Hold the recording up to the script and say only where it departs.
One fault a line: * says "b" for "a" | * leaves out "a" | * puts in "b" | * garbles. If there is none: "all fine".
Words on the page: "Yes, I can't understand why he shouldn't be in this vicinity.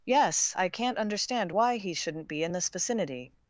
all fine